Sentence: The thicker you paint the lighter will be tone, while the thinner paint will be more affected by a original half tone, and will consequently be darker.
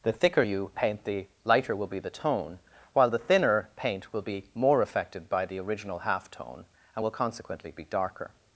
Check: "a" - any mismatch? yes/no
yes